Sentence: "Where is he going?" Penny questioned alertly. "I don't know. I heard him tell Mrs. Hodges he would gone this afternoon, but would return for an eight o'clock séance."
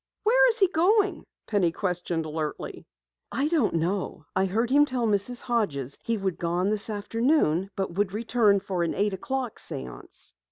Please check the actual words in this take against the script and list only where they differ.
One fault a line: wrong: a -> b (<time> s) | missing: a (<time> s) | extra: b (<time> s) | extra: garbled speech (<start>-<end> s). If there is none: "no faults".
no faults